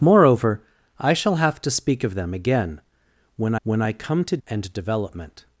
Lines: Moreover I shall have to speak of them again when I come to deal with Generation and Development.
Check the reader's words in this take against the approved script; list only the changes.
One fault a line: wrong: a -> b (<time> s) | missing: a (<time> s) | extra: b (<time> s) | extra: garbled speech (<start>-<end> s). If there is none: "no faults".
extra: when (3.6 s)
missing: deal with Generation (4.4 s)